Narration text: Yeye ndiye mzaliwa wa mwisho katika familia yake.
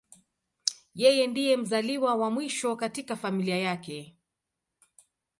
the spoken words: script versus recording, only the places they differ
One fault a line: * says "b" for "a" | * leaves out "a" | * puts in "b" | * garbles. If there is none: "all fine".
all fine